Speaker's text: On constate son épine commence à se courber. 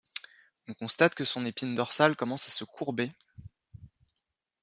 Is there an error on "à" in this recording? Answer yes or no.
no